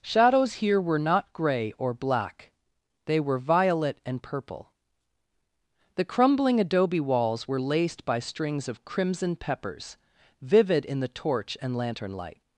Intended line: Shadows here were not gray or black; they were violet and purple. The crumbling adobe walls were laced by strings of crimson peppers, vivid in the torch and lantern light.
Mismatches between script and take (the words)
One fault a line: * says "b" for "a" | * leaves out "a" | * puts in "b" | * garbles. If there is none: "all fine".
all fine